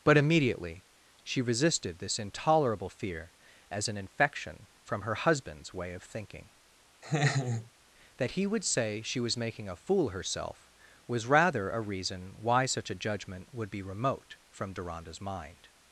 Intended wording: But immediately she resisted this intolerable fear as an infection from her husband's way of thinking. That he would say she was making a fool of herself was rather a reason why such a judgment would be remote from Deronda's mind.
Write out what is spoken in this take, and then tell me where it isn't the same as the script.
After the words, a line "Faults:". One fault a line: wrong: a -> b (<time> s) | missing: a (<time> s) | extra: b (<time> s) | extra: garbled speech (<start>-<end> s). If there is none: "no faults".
But immediately she resisted this intolerable fear as an infection from her husband's way of thinking. That he would say she was making a fool herself was rather a reason why such a judgment would be remote from Deronda's mind.
Faults:
missing: of (10.1 s)